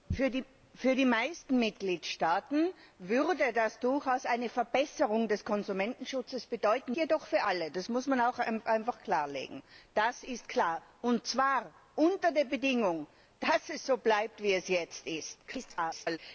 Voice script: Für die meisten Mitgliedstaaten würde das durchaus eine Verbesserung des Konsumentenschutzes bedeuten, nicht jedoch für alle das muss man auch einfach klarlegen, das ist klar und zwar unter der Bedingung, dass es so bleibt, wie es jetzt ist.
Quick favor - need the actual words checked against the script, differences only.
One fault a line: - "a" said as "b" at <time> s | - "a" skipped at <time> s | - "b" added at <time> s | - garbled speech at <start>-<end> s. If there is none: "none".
- "nicht" skipped at 7.0 s
- garbled speech at 15.5-16.2 s